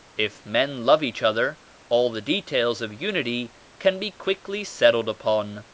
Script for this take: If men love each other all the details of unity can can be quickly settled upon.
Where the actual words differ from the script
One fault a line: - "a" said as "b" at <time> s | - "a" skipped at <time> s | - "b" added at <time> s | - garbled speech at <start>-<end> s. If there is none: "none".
- "can" skipped at 4.0 s